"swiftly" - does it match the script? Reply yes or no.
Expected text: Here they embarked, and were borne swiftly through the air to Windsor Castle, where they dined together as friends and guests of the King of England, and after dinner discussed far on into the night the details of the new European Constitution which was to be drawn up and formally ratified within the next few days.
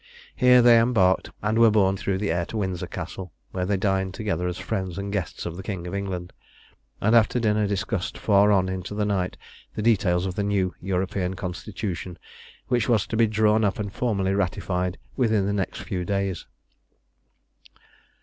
no